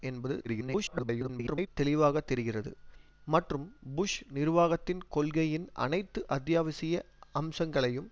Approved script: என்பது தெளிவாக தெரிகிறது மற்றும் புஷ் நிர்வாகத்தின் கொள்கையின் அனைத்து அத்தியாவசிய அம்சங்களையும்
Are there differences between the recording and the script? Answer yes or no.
yes